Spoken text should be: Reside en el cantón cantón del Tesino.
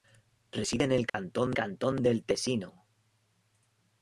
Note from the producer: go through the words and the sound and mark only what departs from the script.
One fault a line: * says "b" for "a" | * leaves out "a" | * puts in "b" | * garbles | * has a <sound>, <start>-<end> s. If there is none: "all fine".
* has a dropout, 1.1-1.1 s